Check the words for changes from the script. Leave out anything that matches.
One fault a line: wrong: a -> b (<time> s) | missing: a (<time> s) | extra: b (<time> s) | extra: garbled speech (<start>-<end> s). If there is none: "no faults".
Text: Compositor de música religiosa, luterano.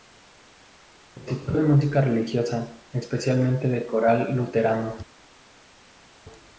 extra: especialmente de coral (2.9 s)